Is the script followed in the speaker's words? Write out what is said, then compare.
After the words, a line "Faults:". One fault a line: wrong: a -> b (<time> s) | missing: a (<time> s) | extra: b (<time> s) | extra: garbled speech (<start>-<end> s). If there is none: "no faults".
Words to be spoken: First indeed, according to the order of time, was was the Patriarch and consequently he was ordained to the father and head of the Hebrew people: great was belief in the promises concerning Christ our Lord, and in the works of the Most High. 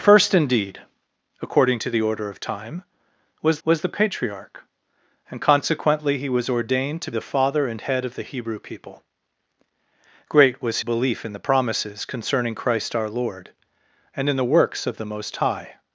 First indeed, according to the order of time, was was the Patriarch and consequently he was ordained to the father and head of the Hebrew people: great was belief in the promises concerning Christ our Lord, and in the works of the Most High.
Faults:
no faults